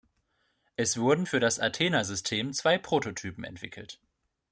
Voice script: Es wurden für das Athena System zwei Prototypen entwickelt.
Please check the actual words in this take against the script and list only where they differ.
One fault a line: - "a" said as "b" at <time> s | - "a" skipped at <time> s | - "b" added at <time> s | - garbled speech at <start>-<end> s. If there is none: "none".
none